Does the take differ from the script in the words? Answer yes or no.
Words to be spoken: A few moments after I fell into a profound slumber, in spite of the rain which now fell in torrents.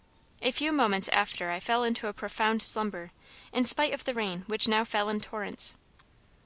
no